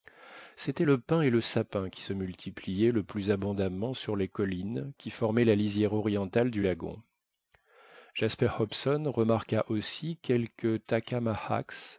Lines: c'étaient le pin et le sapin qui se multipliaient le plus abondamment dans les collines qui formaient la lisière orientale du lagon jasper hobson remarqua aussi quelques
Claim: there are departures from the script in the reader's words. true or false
true